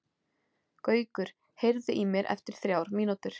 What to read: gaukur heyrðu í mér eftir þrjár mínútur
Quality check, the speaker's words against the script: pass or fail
pass